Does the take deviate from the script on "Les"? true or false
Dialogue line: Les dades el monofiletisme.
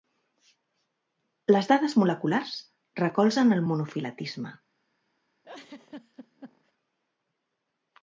false